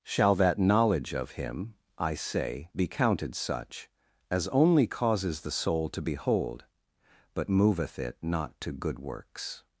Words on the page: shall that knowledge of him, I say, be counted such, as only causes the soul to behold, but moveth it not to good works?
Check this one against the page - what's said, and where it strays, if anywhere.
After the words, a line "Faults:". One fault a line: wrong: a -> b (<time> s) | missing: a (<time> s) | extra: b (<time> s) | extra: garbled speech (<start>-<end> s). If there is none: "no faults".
shall that knowledge of him, I say, be counted such, as only causes the soul to behold, but moveth it not to good works?
Faults:
no faults